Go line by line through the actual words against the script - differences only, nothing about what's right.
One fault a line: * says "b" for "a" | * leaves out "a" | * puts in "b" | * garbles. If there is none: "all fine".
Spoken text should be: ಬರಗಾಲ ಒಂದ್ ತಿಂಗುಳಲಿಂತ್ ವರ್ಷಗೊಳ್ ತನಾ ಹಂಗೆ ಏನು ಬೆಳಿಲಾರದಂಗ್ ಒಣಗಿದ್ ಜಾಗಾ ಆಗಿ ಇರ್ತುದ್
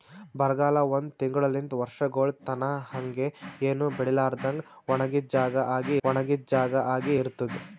* puts in "ಒಣಗಿದ್ ಜಾಗಾ ಆಗಿ"